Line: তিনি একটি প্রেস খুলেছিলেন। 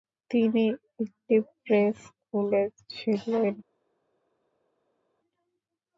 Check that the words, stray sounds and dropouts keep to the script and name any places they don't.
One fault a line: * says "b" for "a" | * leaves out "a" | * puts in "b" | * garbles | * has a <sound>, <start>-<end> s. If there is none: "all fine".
all fine